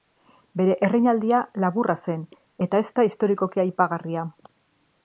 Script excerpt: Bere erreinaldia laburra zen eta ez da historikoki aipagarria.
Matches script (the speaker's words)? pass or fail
pass